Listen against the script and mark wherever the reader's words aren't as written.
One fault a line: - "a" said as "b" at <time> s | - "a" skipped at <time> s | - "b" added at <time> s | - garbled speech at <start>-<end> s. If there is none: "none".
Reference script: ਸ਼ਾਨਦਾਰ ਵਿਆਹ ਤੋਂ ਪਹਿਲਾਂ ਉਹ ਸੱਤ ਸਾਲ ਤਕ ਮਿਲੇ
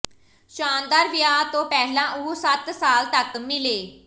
none